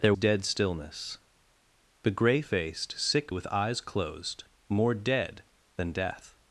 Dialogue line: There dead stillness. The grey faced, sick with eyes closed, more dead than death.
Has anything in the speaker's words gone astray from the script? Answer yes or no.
no